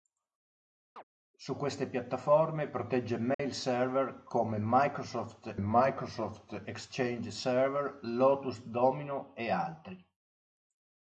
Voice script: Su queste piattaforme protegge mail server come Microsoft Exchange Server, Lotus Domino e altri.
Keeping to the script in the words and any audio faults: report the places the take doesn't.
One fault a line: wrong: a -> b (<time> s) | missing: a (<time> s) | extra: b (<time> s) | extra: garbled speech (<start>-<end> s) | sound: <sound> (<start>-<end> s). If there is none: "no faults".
sound: chirp (1.0-1.0 s)
sound: dropout (3.3-3.4 s)
extra: Microsoft (5.6 s)